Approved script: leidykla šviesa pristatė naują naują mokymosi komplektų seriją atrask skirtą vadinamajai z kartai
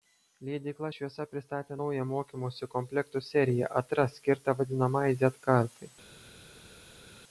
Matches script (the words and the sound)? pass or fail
fail